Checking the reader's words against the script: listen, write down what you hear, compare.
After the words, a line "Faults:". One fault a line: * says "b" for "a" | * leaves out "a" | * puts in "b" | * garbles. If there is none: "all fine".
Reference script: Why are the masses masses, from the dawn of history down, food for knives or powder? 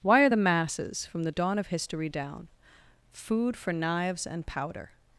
Why are the masses, from the dawn of history down, food for knives and powder?
Faults:
* leaves out "masses"
* says "and" for "or"